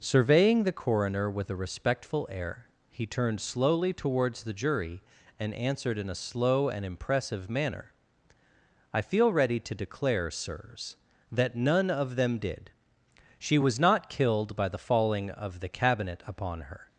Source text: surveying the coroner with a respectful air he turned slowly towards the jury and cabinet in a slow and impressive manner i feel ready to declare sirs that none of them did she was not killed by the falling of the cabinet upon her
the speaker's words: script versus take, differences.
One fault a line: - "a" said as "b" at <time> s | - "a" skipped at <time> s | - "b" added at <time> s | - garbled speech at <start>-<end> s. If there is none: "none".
- "cabinet" said as "answered" at 5.5 s